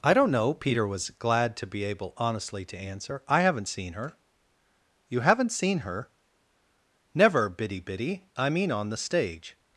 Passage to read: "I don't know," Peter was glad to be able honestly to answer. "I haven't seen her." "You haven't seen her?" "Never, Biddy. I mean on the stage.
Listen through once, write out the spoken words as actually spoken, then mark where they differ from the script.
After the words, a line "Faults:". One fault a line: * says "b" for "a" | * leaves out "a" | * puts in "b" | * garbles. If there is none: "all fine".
"I don't know," Peter was glad to be able honestly to answer. "I haven't seen her." "You haven't seen her?" "Never, Biddy Biddy. I mean on the stage.
Faults:
* puts in "Biddy"